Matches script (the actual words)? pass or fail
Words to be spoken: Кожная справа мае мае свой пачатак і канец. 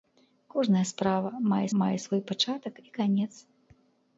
pass